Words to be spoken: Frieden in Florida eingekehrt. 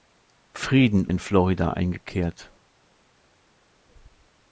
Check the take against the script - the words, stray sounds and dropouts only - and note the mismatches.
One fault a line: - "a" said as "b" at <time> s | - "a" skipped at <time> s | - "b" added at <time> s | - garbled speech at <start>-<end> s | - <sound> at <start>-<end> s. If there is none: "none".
none